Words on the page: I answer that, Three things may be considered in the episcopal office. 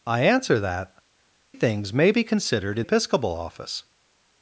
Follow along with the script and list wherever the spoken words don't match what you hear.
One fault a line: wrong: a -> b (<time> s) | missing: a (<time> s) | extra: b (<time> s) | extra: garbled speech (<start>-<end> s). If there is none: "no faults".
missing: Three (0.9 s)
missing: the (2.9 s)